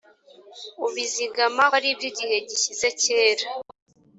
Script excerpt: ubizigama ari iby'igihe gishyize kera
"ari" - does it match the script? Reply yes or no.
yes